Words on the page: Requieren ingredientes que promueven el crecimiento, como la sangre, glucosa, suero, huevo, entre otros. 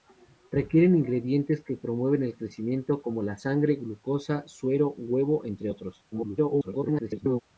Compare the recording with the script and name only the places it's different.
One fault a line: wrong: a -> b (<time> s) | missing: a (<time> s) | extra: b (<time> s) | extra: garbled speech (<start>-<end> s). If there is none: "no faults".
extra: garbled speech (6.1-7.4 s)